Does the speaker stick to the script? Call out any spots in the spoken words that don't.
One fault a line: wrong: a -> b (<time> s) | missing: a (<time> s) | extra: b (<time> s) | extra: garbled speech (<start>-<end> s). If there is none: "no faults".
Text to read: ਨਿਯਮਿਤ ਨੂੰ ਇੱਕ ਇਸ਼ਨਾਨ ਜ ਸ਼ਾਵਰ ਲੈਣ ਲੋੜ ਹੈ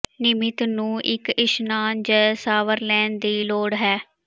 extra: ਦੀ (3.2 s)